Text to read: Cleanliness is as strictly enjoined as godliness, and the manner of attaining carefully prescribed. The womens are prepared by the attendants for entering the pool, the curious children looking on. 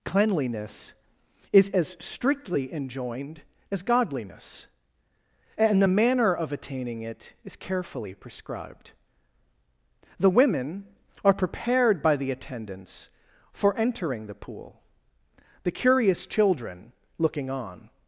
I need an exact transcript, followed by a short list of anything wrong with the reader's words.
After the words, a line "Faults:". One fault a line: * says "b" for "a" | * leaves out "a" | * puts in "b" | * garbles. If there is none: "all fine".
Cleanliness is as strictly enjoined as godliness, and the manner of attaining it is carefully prescribed. The women are prepared by the attendants for entering the pool, the curious children looking on.
Faults:
* puts in "it is"
* says "women" for "womens"